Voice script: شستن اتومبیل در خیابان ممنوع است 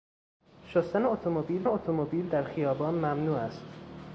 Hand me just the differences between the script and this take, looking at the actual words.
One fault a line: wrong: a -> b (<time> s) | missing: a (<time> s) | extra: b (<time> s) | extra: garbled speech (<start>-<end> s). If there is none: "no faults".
extra: اتومبیل (1.7 s)